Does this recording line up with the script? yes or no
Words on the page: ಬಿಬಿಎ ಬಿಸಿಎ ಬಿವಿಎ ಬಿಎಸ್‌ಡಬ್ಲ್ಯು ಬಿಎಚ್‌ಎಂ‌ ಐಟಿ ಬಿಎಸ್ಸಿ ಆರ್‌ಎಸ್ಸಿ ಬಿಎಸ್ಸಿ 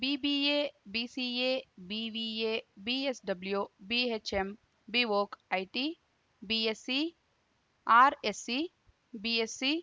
no